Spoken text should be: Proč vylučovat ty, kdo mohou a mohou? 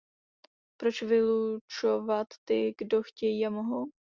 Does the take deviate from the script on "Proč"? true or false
false